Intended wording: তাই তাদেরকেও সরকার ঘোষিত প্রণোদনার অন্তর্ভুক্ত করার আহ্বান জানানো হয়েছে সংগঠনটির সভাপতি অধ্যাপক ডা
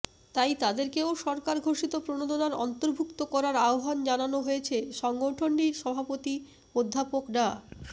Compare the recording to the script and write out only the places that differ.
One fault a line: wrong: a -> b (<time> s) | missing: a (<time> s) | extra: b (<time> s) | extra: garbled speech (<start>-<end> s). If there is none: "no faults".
no faults